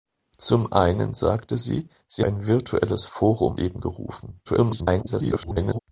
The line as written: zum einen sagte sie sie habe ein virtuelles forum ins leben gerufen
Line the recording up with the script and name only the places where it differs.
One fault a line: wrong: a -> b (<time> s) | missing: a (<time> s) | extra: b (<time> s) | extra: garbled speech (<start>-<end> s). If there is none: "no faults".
missing: habe (2.2 s)
missing: ins (3.6 s)
extra: garbled speech (4.4-5.8 s)